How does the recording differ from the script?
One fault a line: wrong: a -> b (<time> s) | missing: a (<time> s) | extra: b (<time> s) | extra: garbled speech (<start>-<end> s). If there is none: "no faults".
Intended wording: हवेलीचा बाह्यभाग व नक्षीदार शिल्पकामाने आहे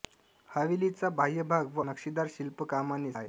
no faults